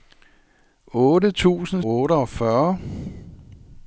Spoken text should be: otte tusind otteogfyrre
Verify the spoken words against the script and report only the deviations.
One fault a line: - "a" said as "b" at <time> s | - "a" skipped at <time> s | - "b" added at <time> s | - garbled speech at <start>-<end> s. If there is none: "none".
none